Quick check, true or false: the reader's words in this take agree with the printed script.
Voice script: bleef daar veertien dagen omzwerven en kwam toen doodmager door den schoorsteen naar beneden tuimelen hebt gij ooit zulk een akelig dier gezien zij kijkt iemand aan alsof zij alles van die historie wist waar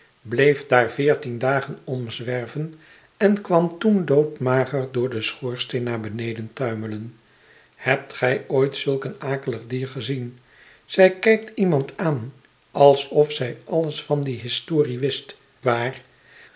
true